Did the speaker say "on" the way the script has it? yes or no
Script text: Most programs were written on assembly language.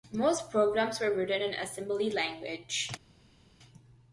no